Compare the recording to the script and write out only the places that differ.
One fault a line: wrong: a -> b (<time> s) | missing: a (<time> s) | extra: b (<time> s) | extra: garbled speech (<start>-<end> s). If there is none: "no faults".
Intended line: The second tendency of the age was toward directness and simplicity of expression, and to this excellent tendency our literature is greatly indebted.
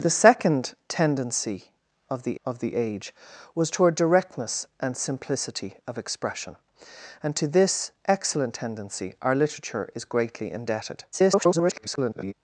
extra: of the (2.4 s)
extra: garbled speech (11.1-12.3 s)